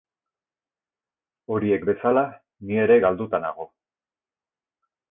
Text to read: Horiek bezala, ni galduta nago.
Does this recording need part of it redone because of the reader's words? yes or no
yes